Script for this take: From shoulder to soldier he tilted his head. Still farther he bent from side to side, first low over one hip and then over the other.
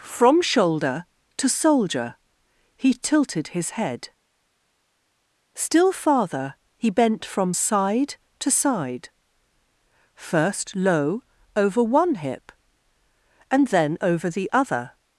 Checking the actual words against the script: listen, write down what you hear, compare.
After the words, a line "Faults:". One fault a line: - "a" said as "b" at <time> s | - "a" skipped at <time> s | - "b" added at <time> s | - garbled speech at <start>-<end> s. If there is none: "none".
From shoulder to soldier he tilted his head. Still farther he bent from side to side, first low over one hip and then over the other.
Faults:
none